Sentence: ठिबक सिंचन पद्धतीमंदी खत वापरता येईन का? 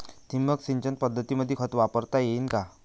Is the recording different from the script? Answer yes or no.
no